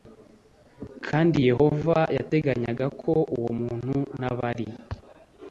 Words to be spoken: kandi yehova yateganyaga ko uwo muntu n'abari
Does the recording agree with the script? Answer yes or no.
yes